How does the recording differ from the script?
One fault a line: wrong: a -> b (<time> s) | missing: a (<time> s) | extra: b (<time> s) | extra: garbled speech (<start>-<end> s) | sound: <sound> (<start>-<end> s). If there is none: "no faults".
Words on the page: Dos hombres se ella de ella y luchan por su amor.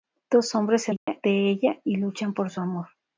sound: dropout (1.0-1.1 s)